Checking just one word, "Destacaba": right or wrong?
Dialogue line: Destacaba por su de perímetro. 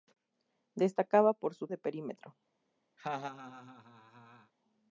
right